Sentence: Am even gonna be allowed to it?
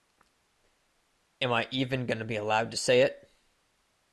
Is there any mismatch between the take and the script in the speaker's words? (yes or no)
yes